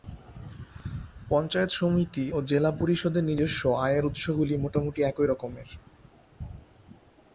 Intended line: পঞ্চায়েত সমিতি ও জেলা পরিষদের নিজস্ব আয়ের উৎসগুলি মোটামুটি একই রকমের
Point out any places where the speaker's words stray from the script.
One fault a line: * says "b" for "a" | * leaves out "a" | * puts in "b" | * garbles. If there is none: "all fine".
all fine